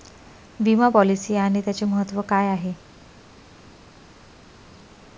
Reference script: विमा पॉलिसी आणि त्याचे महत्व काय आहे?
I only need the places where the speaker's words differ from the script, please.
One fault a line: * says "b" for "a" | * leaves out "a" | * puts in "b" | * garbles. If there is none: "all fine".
all fine